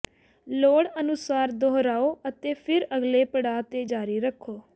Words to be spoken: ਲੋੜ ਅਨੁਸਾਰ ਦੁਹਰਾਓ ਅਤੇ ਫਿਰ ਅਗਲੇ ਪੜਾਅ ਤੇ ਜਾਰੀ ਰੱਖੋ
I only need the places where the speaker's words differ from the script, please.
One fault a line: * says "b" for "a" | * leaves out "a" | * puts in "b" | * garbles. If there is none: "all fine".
all fine